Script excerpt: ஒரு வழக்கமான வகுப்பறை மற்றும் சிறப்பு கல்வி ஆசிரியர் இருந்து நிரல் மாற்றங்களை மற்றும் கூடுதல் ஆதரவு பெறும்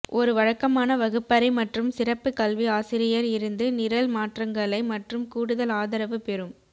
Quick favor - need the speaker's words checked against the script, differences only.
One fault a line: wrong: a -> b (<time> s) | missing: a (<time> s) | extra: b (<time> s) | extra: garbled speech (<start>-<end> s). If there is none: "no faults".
no faults